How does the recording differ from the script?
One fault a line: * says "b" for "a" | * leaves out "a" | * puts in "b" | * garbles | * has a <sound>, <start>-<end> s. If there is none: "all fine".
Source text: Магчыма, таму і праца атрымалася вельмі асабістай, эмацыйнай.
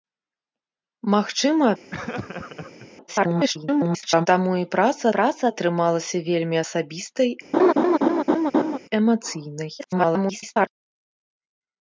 * has a laugh, 1.9-2.9 s
* garbles
* puts in "праца"
* has a laugh, 7.5-8.8 s
* garbles